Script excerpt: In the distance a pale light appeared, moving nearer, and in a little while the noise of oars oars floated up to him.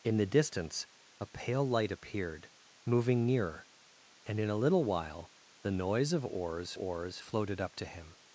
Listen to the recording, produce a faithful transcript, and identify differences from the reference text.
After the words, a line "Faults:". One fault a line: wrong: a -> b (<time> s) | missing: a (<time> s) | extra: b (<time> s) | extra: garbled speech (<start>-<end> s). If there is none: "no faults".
In the distance a pale light appeared, moving nearer, and in a little while the noise of oars oars floated up to him.
Faults:
no faults